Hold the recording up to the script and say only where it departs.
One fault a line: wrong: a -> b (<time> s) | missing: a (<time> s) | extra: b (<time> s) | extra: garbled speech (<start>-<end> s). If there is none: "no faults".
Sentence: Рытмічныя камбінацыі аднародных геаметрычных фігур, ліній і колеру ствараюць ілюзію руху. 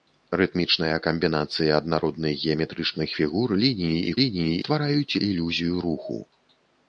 wrong: колеру -> ліній (4.2 s)